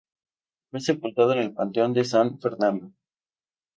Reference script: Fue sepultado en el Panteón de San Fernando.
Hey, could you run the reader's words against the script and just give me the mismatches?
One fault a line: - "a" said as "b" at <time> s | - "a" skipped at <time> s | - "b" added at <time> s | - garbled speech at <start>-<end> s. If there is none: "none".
none